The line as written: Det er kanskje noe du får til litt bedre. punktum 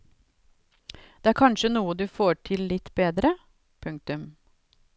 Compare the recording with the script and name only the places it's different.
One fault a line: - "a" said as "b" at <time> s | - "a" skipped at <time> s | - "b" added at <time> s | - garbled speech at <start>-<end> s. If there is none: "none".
none